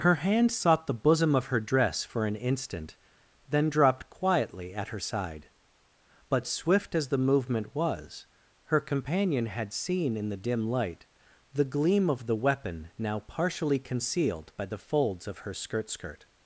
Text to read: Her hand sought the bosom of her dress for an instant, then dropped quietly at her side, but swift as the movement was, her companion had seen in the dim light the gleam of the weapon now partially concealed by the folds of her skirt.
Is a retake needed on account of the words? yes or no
yes